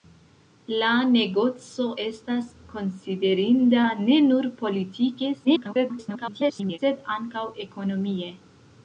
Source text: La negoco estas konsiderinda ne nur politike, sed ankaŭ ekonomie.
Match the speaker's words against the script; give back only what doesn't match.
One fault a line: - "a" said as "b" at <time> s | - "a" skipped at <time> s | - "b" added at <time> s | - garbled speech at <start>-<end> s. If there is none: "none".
- garbled speech at 5.4-6.8 s